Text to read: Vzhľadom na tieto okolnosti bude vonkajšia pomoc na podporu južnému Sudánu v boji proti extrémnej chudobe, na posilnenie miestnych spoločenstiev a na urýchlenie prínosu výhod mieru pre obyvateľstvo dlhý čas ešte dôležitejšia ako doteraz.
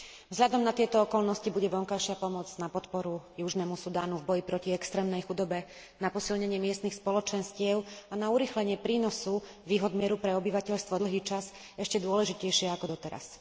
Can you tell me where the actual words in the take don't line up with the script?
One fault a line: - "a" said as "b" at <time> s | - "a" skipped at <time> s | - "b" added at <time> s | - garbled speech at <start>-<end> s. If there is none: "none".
none